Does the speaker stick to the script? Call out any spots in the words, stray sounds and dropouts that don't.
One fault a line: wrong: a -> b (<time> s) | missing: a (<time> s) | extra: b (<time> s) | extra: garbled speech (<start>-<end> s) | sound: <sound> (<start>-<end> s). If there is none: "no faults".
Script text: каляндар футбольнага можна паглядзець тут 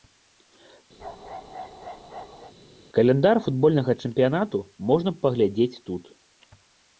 sound: bark (1.0-2.5 s)
extra: чэмпіянату (4.1 s)